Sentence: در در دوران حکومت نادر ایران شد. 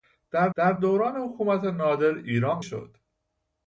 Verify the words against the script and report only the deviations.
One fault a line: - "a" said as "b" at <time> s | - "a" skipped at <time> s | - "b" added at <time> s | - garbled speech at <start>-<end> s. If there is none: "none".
none